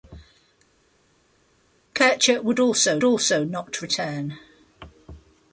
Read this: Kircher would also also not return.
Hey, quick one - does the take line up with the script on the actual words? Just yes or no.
yes